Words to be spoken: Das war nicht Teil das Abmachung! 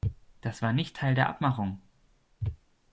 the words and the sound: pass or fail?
fail